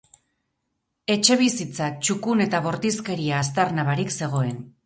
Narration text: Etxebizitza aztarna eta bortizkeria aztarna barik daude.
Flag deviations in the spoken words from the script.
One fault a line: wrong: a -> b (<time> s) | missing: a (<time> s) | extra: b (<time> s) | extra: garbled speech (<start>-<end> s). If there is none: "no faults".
wrong: aztarna -> txukun (2.1 s)
wrong: daude -> zegoen (4.2 s)